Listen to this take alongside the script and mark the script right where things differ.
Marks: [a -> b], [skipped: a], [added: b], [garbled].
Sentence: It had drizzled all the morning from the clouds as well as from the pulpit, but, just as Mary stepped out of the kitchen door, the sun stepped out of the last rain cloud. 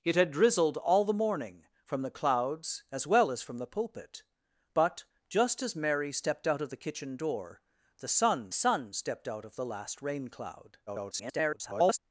It had drizzled all the morning from the clouds as well as from the pulpit, but, just as Mary stepped out of the kitchen door, the sun [added: sun] stepped out of the last rain cloud. [garbled]